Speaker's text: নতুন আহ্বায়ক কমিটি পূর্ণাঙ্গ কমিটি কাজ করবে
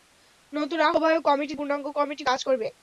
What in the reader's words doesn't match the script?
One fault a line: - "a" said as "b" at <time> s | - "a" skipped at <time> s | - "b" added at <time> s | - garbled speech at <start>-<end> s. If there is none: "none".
none